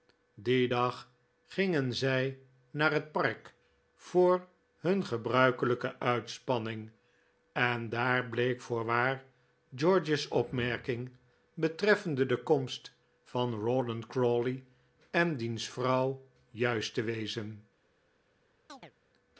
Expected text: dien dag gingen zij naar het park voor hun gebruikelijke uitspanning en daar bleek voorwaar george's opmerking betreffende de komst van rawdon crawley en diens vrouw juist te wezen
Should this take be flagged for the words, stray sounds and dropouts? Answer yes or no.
yes